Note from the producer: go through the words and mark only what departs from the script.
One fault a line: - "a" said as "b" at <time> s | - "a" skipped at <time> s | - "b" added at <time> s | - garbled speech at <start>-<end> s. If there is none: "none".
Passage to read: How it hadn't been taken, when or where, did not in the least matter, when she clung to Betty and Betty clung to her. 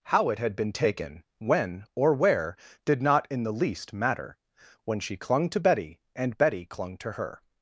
- "hadn't" said as "had" at 0.4 s